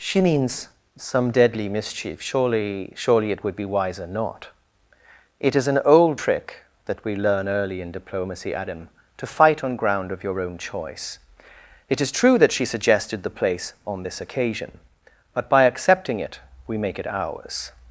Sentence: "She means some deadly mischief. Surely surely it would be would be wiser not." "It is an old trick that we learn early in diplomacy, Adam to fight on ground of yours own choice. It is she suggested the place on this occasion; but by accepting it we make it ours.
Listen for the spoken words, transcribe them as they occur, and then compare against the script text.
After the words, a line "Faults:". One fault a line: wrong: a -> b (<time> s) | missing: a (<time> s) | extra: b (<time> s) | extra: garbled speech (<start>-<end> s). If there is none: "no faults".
"She means some deadly mischief. Surely surely it would be wiser not." "It is an old trick that we learn early in diplomacy, Adam to fight on ground of your own choice. It is true that she suggested the place on this occasion; but by accepting it we make it ours.
Faults:
missing: would be (3.8 s)
wrong: yours -> your (10.2 s)
extra: true that (12.1 s)